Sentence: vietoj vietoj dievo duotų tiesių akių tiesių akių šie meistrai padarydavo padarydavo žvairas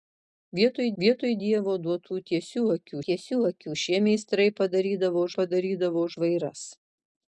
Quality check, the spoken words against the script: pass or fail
pass